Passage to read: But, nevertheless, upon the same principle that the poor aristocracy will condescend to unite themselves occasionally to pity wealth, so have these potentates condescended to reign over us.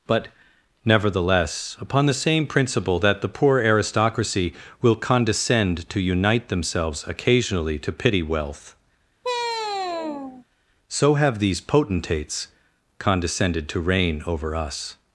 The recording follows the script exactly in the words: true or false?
true